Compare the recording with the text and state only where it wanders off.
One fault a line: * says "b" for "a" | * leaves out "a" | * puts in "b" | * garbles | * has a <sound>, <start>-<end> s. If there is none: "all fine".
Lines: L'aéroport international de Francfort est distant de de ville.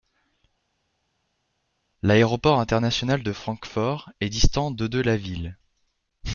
* puts in "la"